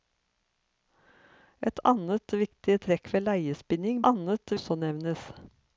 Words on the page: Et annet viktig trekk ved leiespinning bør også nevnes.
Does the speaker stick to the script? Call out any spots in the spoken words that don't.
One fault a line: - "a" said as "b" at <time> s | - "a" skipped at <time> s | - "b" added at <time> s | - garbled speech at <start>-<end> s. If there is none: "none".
- "bør" said as "annet" at 4.1 s